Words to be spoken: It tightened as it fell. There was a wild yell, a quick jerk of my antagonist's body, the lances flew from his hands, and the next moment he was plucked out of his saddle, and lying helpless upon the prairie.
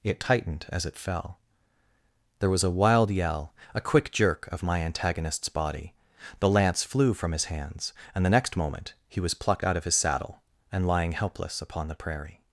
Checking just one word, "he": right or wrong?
right